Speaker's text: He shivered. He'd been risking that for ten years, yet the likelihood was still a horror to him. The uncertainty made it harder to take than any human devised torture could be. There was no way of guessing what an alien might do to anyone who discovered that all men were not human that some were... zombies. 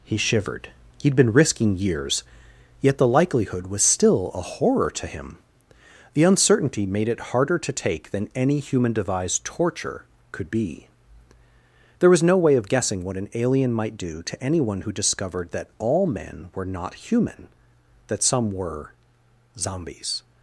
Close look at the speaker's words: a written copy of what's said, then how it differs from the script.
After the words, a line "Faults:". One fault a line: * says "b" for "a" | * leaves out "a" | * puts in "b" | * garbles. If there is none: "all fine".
He shivered. He'd been risking years, yet the likelihood was still a horror to him. The uncertainty made it harder to take than any human devised torture could be. There was no way of guessing what an alien might do to anyone who discovered that all men were not human that some were... zombies.
Faults:
* leaves out "that for ten"